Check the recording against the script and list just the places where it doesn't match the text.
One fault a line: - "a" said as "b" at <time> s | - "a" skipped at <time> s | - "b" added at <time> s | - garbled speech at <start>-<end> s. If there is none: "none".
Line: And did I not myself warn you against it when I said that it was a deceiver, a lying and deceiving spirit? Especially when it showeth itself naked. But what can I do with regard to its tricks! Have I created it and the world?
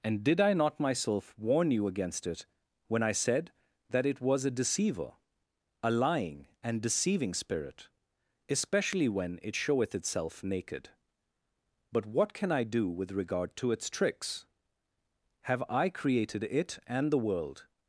none